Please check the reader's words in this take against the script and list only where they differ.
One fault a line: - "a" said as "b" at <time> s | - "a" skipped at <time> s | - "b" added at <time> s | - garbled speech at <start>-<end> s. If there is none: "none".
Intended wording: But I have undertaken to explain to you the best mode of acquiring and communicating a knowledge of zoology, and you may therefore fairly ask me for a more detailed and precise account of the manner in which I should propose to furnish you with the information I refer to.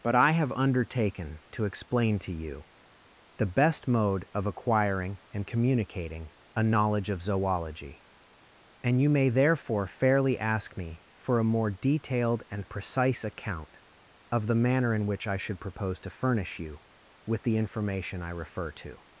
none